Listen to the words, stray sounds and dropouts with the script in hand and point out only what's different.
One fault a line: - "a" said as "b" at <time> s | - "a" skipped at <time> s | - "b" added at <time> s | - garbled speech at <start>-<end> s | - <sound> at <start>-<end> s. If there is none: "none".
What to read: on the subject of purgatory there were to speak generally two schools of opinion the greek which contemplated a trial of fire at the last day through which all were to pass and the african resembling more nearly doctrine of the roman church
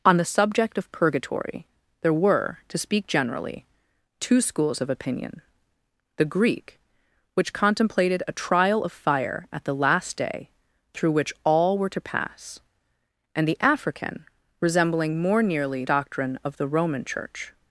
none